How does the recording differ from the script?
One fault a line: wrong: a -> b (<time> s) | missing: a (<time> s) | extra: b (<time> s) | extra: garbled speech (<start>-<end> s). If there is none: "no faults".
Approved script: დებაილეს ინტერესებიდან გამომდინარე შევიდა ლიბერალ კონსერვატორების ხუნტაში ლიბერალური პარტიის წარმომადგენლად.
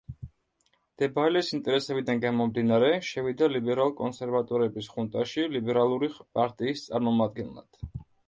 no faults